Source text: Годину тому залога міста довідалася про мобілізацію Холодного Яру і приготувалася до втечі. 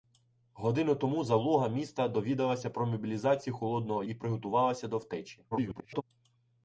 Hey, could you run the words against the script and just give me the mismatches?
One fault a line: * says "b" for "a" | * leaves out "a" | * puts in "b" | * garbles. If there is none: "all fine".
* leaves out "Яру"
* garbles